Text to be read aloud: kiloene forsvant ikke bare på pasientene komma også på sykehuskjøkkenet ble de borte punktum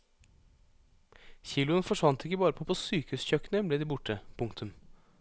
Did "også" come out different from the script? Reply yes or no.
yes